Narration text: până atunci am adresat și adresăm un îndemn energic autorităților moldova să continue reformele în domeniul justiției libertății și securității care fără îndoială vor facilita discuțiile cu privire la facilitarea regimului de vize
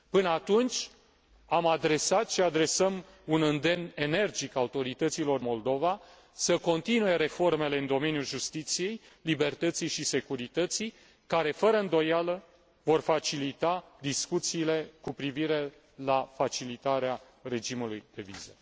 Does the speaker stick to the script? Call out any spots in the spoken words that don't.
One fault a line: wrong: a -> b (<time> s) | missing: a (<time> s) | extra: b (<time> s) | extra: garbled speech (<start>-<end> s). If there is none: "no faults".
no faults